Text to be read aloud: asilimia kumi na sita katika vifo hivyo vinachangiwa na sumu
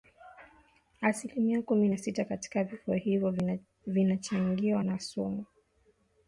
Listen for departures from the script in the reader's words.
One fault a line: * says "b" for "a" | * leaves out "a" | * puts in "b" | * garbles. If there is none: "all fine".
all fine